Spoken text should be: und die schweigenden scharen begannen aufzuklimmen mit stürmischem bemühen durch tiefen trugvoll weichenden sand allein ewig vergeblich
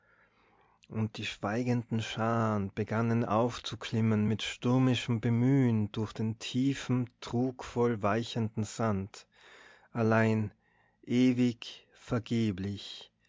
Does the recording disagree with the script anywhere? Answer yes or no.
yes